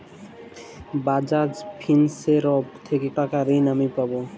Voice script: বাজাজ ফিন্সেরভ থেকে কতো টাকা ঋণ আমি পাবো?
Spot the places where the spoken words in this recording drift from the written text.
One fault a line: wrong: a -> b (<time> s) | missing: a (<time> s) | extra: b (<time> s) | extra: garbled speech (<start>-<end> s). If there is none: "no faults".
missing: কতো (3.1 s)